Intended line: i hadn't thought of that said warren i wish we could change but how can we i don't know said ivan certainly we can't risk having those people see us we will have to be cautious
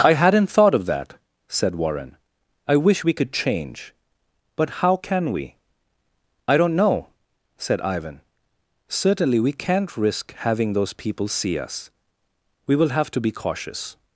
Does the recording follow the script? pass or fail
pass